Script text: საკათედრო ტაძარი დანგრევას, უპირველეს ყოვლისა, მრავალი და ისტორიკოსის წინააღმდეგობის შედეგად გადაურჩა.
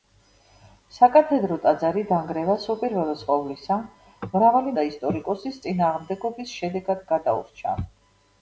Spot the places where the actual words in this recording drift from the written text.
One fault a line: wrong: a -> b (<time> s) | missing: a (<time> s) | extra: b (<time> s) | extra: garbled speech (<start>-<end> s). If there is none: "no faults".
no faults